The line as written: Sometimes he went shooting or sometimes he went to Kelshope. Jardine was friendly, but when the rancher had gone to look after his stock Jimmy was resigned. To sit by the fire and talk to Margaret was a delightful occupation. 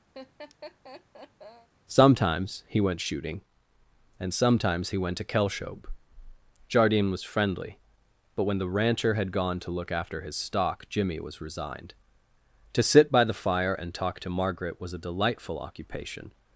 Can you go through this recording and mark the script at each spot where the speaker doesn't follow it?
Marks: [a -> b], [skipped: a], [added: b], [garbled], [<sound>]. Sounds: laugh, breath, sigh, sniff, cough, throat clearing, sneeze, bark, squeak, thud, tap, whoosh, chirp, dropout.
[laugh] Sometimes he went shooting [or -> and] sometimes he went to Kelshope. Jardine was friendly, but when the rancher had gone to look after his stock Jimmy was resigned. To sit by the fire and talk to Margaret was a delightful occupation.